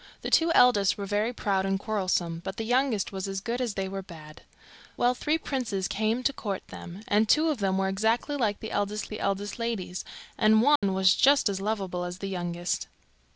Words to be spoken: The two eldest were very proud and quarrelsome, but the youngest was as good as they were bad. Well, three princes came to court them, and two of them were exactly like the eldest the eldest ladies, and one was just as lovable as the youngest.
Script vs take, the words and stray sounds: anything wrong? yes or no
yes